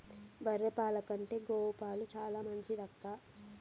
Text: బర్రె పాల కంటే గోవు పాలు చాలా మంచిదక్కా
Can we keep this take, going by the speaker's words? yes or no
yes